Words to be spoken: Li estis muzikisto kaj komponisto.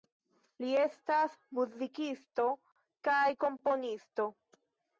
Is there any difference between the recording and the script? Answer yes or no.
yes